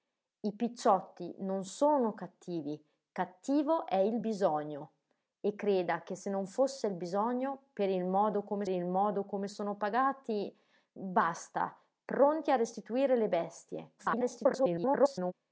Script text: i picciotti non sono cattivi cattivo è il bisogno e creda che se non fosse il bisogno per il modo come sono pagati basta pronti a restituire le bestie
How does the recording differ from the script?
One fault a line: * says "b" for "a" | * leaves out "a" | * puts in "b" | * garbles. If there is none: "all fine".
* puts in "il modo come"
* garbles